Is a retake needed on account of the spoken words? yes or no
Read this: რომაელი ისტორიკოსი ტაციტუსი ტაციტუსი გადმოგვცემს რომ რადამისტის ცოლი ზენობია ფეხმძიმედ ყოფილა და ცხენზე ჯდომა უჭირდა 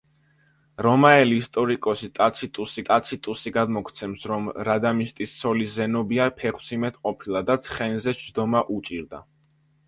no